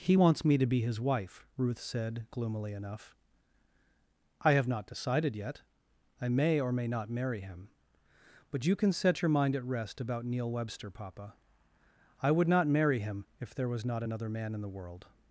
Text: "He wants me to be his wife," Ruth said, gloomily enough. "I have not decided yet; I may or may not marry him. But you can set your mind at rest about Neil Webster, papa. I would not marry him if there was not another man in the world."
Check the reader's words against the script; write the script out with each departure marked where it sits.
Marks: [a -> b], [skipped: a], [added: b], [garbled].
"He wants me to be his wife," Ruth said, gloomily enough. "I have not decided yet; I may or may not marry him. But you can set your mind at rest about Neil Webster, papa. I would not marry him if there was not another man in the world."